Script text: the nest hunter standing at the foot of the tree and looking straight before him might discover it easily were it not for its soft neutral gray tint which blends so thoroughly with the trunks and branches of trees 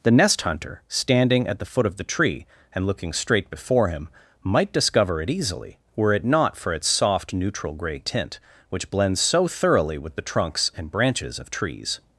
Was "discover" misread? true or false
false